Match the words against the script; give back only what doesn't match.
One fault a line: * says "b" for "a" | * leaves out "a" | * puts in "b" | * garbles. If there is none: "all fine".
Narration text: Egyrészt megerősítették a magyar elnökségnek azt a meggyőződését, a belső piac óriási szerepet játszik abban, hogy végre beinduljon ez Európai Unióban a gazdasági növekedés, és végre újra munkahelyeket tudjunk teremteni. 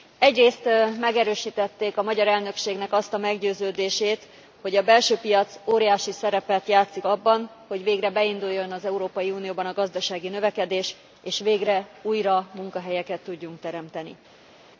* puts in "hogy"
* says "az" for "ez"